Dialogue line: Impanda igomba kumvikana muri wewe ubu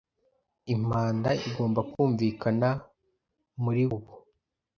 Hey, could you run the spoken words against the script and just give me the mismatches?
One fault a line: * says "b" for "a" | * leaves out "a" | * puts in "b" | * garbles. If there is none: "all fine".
* leaves out "wewe"